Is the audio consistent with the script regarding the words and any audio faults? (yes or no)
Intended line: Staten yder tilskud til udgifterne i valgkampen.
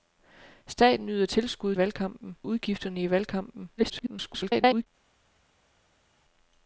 no